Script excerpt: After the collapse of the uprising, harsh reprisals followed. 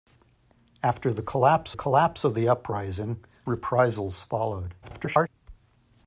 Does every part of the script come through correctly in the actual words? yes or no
no